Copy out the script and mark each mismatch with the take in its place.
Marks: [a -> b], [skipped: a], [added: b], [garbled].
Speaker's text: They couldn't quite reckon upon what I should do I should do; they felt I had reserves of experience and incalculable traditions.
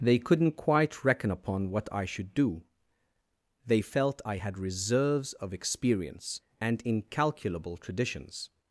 They couldn't quite reckon upon what I should do [skipped: I should do;] they felt I had reserves of experience and incalculable traditions.